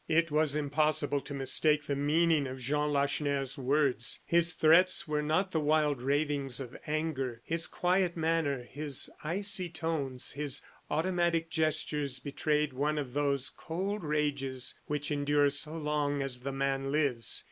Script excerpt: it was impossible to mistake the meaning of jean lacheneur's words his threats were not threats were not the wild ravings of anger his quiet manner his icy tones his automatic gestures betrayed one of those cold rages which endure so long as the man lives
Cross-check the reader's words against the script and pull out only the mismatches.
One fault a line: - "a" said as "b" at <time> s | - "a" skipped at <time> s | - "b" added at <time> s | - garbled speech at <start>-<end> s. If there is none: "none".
- "threats were not" skipped at 5.5 s